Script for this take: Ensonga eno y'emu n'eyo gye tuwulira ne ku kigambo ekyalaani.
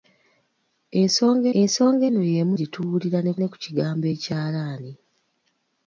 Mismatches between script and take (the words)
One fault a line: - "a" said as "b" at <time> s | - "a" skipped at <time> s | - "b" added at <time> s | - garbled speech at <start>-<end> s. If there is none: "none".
- "ensonga" added at 1.6 s
- "n'eyo" skipped at 2.5 s
- "ne" added at 3.4 s